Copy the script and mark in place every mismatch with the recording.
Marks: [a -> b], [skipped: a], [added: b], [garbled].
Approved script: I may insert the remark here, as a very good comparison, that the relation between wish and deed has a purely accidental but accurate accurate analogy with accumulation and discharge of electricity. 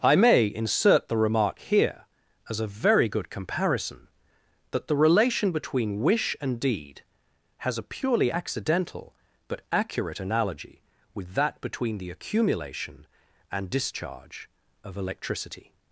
I may insert the remark here, as a very good comparison, that the relation between wish and deed has a purely accidental but accurate [skipped: accurate] analogy with [added: that between the] accumulation and discharge of electricity.